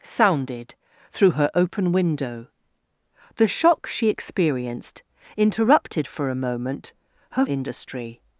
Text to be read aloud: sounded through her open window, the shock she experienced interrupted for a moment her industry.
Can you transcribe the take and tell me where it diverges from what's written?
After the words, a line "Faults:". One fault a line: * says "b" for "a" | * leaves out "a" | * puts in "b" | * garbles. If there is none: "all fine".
sounded through her open window, the shock she experienced interrupted for a moment her industry.
Faults:
all fine